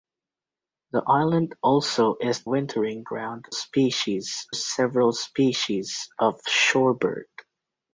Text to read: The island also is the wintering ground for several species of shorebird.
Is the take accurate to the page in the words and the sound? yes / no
no